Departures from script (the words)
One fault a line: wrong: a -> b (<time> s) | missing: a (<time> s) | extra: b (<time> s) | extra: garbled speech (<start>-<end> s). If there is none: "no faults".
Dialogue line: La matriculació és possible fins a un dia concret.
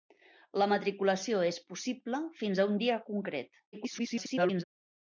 extra: garbled speech (3.7-4.6 s)